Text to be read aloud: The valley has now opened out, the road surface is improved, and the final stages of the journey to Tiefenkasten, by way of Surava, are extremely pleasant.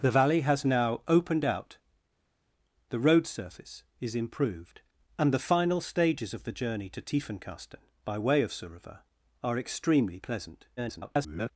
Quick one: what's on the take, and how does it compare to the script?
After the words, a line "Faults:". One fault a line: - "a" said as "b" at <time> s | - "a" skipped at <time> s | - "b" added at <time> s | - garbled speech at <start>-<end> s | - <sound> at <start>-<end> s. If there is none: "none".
The valley has now opened out, the road surface is improved, and the final stages of the journey to Tiefenkasten, by way of Surava, are extremely pleasant. [garbled]
Faults:
- garbled speech at 10.8-11.5 s